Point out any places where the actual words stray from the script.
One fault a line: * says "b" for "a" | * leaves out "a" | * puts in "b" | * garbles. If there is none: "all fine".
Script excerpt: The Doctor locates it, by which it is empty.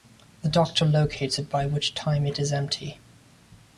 * puts in "time"